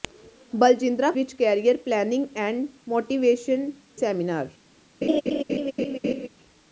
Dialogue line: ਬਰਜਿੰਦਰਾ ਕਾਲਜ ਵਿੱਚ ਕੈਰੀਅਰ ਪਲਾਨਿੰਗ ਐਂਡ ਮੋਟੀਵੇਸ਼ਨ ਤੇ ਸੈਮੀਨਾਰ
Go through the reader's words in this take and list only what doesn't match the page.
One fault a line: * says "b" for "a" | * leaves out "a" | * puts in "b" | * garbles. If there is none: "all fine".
* leaves out "ਕਾਲਜ"
* leaves out "ਤੇ"